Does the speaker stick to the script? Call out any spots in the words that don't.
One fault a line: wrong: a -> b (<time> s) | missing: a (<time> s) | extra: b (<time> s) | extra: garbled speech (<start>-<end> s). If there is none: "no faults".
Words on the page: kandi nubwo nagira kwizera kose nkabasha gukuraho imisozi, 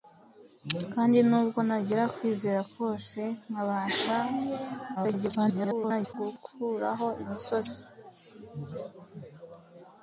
extra: garbled speech (5.0-6.1 s)